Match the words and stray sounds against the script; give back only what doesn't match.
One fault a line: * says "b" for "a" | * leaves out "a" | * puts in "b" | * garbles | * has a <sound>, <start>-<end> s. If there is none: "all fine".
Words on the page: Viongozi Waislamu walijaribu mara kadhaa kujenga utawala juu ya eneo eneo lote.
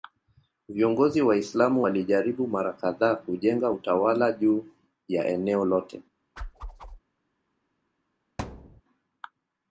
* leaves out "eneo"
* has a whoosh, 6.4-7.0 s
* has a thud, 8.4-8.8 s